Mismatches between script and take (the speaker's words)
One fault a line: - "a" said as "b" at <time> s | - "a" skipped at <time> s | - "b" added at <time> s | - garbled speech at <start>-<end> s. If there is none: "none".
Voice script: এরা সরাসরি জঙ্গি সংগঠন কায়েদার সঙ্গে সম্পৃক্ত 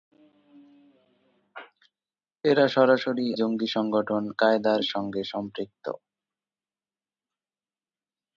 none